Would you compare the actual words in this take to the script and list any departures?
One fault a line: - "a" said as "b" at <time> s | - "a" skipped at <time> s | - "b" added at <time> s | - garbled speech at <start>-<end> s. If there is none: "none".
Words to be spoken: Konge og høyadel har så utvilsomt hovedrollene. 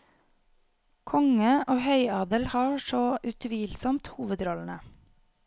none